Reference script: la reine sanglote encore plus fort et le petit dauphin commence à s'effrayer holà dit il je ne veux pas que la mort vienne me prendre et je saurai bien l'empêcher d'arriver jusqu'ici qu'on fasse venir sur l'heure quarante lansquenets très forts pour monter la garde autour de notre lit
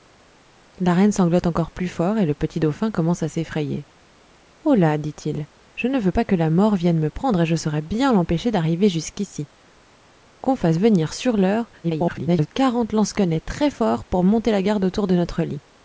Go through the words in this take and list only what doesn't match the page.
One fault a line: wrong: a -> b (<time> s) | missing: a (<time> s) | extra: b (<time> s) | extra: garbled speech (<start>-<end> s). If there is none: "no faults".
extra: garbled speech (11.8-12.5 s)